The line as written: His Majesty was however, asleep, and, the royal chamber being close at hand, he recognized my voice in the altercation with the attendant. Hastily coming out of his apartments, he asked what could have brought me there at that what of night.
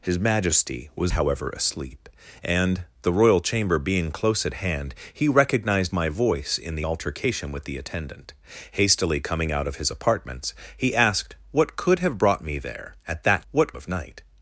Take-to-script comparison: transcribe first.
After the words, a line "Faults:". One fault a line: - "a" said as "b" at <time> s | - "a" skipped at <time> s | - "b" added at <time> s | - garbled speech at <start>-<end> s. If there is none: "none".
His Majesty was however, asleep, and, the royal chamber being close at hand, he recognized my voice in the altercation with the attendant. Hastily coming out of his apartments, he asked what could have brought me there at that what of night.
Faults:
none